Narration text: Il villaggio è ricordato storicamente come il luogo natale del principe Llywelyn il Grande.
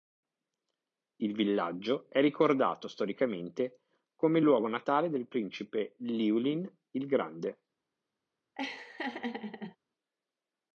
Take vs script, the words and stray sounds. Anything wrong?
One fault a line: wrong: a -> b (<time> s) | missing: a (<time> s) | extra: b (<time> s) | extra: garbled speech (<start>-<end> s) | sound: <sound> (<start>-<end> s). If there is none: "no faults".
sound: laugh (8.5-9.8 s)